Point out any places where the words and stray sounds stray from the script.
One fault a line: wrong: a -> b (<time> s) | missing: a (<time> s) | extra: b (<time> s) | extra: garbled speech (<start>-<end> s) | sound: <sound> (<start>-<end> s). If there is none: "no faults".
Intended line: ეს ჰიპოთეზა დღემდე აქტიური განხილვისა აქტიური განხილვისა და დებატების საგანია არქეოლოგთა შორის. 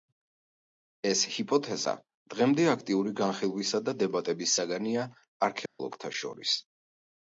missing: აქტიური განხილვისა (3.8 s)
sound: dropout (5.7-5.8 s)